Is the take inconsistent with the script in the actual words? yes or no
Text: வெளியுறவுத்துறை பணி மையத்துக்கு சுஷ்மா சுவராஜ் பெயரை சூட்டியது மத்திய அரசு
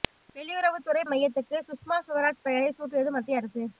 yes